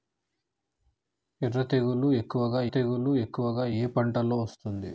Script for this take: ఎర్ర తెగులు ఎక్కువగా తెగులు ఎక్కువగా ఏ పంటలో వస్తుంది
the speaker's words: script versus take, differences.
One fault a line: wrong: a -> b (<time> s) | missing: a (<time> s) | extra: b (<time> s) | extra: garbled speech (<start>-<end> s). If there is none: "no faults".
no faults